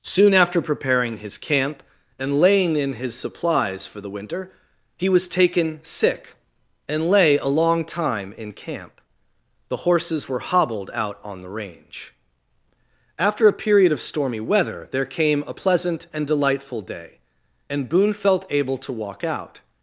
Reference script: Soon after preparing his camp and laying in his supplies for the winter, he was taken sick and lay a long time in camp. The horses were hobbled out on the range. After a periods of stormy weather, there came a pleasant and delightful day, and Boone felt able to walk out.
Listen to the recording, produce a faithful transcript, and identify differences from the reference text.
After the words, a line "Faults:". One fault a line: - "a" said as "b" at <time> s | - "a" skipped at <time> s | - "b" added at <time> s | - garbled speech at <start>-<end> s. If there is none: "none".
Soon after preparing his camp and laying in his supplies for the winter, he was taken sick and lay a long time in camp. The horses were hobbled out on the range. After a period of stormy weather, there came a pleasant and delightful day, and Boone felt able to walk out.
Faults:
- "periods" said as "period" at 13.5 s